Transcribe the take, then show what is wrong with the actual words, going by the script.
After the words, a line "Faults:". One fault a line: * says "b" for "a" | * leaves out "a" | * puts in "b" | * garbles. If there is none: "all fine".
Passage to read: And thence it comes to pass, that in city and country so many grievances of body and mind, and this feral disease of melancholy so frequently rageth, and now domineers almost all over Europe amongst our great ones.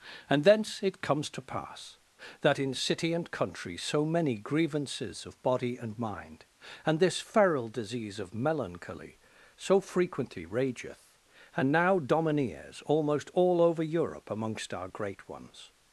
And thence it comes to pass, that in city and country so many grievances of body and mind, and this feral disease of melancholy so frequently rageth, and now domineers almost all over Europe amongst our great ones.
Faults:
all fine